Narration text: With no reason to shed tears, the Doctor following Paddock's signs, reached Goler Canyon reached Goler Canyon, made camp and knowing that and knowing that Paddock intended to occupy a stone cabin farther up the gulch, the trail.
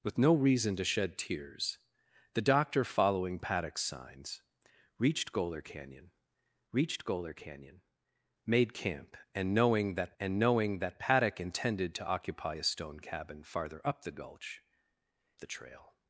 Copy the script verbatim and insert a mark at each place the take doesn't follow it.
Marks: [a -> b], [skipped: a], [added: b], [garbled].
With no reason to shed tears, the Doctor following Paddock's signs, reached Goler Canyon reached Goler Canyon, made camp and knowing that and knowing that Paddock intended to occupy a stone cabin farther up the gulch, the trail.